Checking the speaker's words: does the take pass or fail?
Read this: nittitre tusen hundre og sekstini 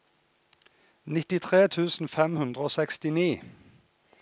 fail